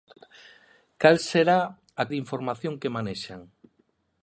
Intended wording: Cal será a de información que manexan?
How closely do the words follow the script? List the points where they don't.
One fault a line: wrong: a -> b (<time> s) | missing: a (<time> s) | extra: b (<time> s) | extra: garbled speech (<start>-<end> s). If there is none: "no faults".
no faults